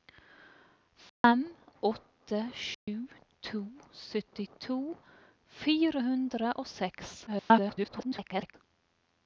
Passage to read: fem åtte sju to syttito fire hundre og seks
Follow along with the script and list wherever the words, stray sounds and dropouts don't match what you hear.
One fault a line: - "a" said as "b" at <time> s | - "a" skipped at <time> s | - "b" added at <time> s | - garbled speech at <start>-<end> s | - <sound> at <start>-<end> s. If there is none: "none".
- dropout at 1.1-1.2 s
- dropout at 2.7-2.9 s
- garbled speech at 7.3-8.5 s